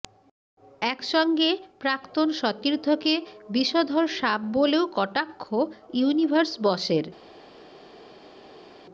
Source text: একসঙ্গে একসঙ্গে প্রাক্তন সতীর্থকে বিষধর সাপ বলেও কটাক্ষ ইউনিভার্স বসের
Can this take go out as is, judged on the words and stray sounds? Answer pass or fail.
fail